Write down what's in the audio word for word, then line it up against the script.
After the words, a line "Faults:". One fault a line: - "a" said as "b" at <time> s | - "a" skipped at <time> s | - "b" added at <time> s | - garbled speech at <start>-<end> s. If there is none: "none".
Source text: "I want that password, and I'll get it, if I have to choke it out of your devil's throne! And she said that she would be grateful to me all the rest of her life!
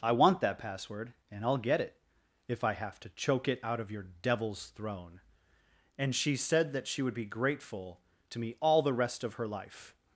"I want that password, and I'll get it, if I have to choke it out of your devil's throne! And she said that she would be grateful to me all the rest of her life!
Faults:
none